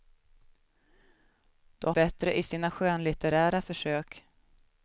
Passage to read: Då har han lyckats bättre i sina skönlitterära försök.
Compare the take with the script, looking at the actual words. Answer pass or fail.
fail